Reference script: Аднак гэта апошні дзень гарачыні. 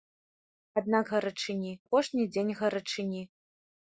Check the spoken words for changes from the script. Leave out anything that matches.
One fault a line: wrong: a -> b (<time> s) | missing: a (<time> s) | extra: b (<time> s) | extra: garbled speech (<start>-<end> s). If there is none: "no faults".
wrong: гэта -> гарачыні (1.1 s)